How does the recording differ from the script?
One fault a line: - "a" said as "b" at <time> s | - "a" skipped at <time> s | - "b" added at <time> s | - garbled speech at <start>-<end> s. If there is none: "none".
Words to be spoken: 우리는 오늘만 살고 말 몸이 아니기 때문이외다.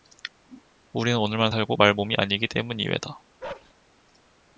none